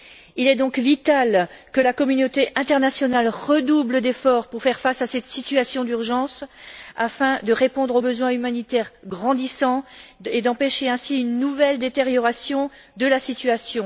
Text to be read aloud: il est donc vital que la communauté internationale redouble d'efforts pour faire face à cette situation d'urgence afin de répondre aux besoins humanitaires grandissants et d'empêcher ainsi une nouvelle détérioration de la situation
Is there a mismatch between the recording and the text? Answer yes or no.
no